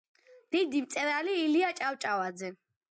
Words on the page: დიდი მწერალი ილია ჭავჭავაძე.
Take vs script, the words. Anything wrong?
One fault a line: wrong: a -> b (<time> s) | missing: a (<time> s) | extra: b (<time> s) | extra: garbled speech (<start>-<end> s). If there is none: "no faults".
no faults